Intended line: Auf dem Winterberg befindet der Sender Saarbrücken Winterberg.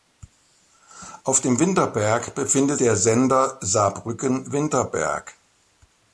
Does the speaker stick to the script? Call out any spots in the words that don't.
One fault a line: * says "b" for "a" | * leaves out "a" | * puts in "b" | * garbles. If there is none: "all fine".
all fine